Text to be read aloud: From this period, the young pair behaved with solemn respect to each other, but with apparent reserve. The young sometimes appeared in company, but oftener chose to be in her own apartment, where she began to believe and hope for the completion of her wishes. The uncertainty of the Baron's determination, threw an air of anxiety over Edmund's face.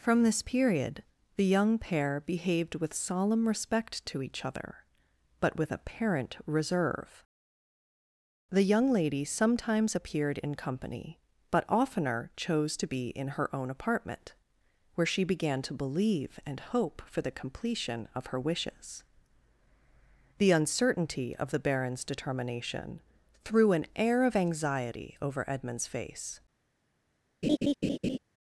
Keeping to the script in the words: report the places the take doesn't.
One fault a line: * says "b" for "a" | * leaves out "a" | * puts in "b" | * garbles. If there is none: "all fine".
* puts in "lady"